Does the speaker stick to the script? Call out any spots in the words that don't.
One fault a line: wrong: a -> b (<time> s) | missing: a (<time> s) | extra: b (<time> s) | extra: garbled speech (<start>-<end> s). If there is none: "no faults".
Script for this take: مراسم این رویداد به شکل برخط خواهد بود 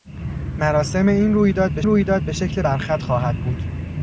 extra: رویداد به (1.8 s)